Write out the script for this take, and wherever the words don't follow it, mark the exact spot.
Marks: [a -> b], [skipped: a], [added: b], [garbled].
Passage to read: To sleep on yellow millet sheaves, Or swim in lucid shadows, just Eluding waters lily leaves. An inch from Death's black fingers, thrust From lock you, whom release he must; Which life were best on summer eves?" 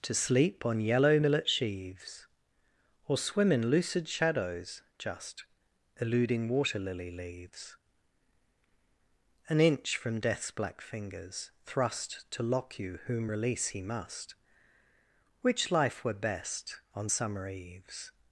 To sleep on yellow millet sheaves, Or swim in lucid shadows, just Eluding [waters -> water] lily leaves. An inch from Death's black fingers, thrust [From -> To] lock you, whom release he must; Which life were best on summer eves?"